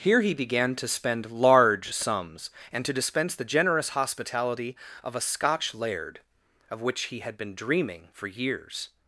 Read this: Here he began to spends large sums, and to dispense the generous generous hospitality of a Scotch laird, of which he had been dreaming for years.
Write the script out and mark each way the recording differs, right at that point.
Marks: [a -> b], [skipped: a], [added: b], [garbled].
Here he began to [spends -> spend] large sums, and to dispense the generous [skipped: generous] hospitality of a Scotch laird, of which he had been dreaming for years.